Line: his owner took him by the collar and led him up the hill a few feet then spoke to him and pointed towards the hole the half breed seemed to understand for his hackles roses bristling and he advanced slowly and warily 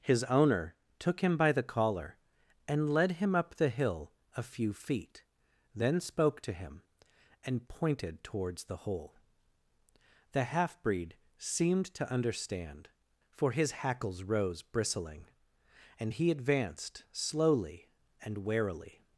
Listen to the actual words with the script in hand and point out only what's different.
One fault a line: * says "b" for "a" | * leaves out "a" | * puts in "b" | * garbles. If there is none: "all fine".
* says "rose" for "roses"